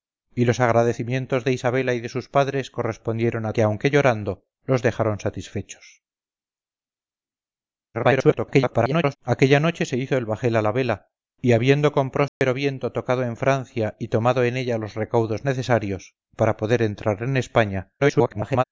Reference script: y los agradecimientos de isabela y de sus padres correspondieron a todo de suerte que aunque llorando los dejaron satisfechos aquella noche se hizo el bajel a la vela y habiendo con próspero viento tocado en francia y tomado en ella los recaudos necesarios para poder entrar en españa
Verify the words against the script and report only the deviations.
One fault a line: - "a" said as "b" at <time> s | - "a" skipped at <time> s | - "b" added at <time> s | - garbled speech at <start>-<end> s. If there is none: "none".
- "todo de suerte" skipped at 3.5 s
- garbled speech at 7.9-9.2 s
- garbled speech at 18.0-18.6 s